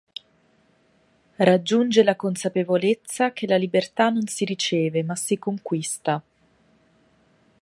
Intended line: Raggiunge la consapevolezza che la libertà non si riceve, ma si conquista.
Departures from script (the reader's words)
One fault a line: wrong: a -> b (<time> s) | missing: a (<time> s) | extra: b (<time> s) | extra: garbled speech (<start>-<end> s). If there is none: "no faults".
no faults